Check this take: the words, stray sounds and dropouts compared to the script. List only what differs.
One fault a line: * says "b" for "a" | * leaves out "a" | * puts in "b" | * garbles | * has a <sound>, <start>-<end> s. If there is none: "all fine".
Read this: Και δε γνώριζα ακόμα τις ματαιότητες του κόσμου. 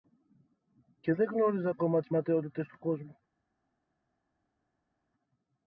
all fine